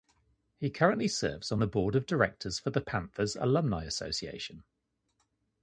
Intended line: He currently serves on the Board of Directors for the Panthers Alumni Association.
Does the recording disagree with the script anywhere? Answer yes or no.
no